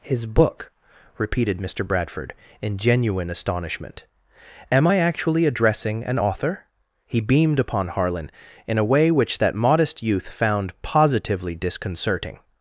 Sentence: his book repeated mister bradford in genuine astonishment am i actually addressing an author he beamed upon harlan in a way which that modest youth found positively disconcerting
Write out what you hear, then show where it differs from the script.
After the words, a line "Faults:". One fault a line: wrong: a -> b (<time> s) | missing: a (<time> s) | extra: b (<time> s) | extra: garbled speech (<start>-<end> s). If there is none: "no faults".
his book repeated mister bradford in genuine astonishment am i actually addressing an author he beamed upon harlan in a way which that modest youth found positively disconcerting
Faults:
no faults